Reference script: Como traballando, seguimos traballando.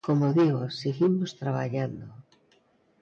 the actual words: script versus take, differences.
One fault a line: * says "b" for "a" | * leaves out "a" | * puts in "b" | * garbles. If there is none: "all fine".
* says "digo" for "traballando"